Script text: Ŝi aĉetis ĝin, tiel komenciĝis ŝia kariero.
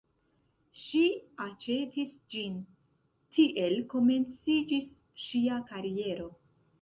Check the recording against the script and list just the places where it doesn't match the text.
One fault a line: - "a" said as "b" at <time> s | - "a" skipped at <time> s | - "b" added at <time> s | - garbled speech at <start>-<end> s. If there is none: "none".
none